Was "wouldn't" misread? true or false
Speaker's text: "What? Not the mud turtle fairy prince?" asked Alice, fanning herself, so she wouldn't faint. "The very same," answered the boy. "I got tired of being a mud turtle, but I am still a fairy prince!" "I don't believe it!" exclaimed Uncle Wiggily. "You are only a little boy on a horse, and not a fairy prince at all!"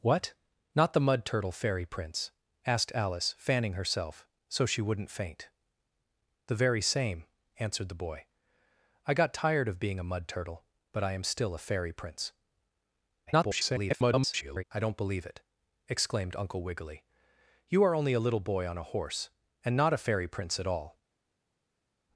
false